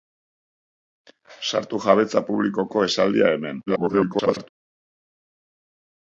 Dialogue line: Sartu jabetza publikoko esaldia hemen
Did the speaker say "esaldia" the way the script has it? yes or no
yes